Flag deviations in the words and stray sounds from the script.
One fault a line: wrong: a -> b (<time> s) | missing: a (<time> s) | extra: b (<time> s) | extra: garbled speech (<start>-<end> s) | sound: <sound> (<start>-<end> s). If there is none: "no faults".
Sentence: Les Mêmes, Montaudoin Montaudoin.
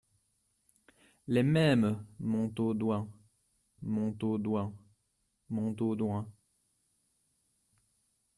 extra: Montaudoin (5.5 s)